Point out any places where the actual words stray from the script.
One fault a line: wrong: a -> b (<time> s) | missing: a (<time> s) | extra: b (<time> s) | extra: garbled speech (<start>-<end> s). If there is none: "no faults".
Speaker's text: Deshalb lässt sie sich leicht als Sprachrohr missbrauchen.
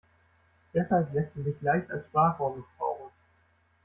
no faults